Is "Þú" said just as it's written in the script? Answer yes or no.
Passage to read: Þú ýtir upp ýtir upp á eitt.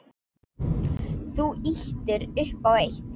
yes